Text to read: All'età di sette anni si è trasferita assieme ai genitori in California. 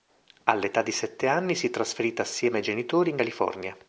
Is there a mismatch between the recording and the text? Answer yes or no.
no